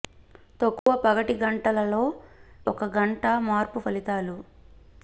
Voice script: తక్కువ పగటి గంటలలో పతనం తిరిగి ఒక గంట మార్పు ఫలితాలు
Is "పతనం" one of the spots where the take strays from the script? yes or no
yes